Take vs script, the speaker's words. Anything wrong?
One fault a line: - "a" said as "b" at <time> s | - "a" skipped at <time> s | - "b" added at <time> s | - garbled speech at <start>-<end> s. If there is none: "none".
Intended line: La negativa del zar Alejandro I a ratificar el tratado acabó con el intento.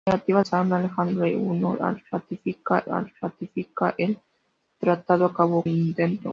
- "del" skipped at 0.4 s
- "a ratificar" added at 2.9 s
- "con" skipped at 5.6 s